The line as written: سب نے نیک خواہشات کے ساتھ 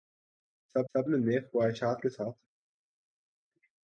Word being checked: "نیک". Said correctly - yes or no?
yes